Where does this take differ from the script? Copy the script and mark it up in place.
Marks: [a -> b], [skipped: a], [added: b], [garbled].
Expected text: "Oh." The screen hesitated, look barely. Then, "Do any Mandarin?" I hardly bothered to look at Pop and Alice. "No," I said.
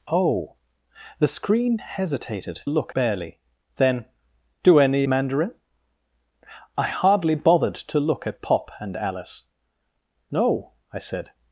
"Oh." The screen hesitated, look barely. Then, "Do any Mandarin?" I hardly bothered to look at Pop and Alice. "No," I said.